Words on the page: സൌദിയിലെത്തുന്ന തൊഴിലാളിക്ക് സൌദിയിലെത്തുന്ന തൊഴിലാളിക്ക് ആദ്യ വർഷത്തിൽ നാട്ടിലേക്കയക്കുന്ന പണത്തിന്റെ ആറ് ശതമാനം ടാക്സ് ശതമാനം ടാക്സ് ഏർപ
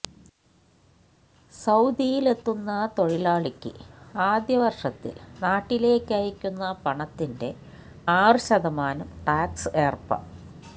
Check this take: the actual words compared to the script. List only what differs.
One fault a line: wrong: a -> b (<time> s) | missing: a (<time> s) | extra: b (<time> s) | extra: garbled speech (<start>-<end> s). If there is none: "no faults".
missing: സൌദിയിലെത്തുന്ന തൊഴിലാളിക്ക് (3.7 s)
missing: ശതമാനം ടാക്സ് (9.8 s)